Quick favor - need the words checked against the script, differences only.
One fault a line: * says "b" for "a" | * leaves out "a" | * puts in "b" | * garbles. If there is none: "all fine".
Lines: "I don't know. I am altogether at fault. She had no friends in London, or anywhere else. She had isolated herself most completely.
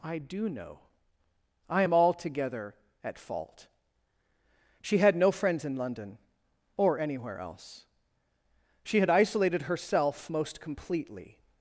* says "do" for "don't"